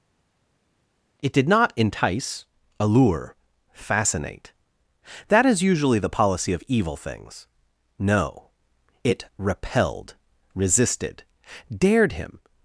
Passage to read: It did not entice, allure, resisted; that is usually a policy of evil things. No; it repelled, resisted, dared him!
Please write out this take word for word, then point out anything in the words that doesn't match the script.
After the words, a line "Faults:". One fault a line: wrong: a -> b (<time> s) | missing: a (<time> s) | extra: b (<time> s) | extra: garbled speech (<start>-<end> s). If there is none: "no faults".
It did not entice, allure, fascinate; that is usually the policy of evil things. No; it repelled, resisted, dared him!
Faults:
wrong: resisted -> fascinate (3.7 s)
wrong: a -> the (6.0 s)